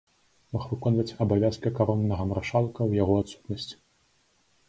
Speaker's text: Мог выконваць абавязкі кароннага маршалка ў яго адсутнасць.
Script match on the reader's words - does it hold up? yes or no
yes